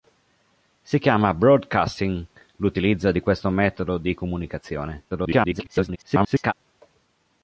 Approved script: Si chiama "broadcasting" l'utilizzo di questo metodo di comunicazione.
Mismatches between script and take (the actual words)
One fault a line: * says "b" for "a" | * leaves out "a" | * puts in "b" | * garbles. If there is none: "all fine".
* garbles